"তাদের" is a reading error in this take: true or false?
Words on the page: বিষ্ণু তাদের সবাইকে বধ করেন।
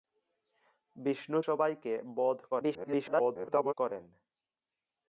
true